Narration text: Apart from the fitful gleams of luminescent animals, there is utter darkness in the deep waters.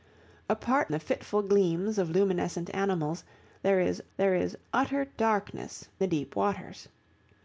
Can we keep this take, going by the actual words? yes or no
no